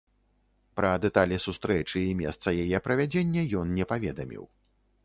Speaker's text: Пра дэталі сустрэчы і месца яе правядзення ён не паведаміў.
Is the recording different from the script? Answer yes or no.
no